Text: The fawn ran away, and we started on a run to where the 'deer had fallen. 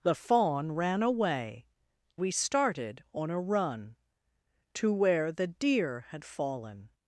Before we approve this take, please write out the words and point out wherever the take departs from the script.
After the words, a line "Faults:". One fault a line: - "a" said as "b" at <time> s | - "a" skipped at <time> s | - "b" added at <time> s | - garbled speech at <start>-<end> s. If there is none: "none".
The fawn ran away, we started on a run to where the 'deer had fallen.
Faults:
- "and" skipped at 1.7 s